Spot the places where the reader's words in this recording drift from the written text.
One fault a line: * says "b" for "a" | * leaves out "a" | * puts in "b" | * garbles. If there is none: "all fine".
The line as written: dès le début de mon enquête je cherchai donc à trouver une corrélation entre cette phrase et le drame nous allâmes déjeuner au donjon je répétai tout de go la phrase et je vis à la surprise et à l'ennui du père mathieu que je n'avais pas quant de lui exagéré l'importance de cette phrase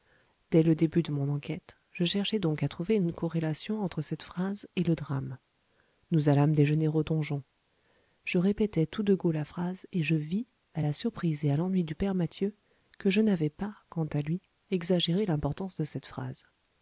* says "à" for "de"